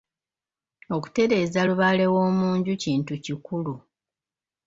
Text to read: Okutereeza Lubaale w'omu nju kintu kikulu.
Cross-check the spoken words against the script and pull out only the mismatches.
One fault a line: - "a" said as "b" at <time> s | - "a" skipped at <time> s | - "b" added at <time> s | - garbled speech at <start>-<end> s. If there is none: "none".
none